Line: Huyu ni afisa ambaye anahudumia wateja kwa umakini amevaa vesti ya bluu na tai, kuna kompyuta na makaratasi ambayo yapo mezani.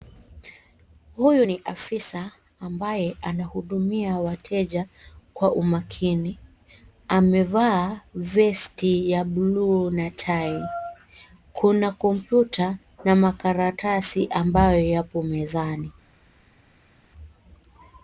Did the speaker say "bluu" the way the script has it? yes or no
yes